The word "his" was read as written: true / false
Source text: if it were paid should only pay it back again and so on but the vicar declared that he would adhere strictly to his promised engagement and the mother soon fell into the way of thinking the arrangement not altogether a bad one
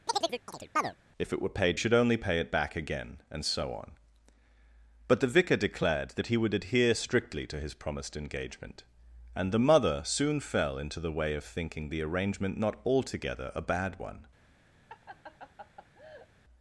true